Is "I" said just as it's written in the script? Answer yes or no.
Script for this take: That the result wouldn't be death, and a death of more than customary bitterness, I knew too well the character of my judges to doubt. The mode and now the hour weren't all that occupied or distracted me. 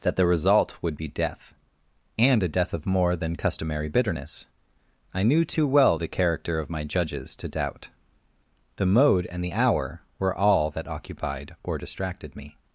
yes